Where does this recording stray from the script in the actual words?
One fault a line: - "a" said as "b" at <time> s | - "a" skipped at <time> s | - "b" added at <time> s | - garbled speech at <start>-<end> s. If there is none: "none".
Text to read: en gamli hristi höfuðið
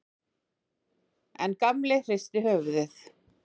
none